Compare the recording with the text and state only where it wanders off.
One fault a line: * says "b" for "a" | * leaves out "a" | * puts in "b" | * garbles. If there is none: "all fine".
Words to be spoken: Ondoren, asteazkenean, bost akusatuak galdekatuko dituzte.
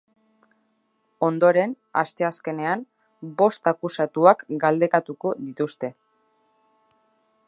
all fine